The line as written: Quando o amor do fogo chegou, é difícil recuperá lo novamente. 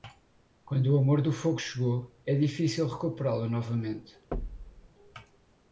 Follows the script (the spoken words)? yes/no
yes